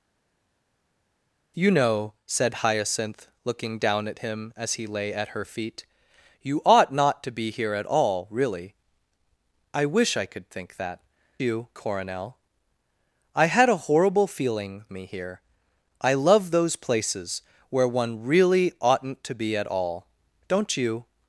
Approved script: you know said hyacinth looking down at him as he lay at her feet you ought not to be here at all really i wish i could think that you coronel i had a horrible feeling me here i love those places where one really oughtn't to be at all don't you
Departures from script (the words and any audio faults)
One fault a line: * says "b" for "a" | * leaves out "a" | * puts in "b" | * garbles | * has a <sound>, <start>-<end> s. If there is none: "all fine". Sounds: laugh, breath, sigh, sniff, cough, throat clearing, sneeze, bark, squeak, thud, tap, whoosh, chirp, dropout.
all fine